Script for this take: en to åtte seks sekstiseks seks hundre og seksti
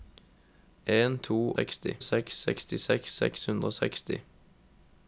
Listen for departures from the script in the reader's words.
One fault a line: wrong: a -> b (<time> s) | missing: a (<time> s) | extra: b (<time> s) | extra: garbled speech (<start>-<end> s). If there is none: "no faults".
wrong: åtte -> seksti (1.5 s)